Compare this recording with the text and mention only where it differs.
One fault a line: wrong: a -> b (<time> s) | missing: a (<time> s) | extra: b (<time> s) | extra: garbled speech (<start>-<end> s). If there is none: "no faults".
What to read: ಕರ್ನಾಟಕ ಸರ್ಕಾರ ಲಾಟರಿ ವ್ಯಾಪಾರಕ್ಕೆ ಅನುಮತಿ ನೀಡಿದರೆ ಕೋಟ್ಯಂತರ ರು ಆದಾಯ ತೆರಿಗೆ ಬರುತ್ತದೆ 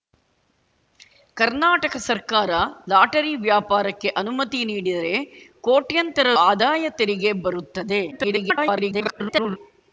missing: ರು (6.3 s)
extra: garbled speech (8.1-9.6 s)